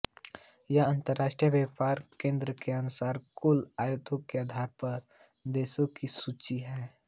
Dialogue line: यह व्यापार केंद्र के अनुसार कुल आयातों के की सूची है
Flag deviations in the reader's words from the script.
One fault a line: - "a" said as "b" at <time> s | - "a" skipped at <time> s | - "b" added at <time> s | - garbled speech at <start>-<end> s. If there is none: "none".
- "अंतर्राष्ट्रीय" added at 0.8 s
- "आधार पर देशों" added at 4.4 s